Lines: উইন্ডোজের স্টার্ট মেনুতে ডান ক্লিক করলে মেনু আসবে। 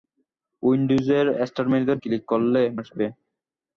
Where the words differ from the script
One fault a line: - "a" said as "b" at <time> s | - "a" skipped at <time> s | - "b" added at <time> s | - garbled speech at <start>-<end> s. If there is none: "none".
- "ডান" skipped at 1.9 s
- "মেনু" skipped at 2.6 s